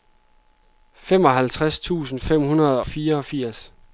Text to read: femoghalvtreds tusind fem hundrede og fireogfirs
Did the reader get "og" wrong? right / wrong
wrong